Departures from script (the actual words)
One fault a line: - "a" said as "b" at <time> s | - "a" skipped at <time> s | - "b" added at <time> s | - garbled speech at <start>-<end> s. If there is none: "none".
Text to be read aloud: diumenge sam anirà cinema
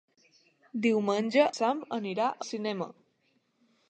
none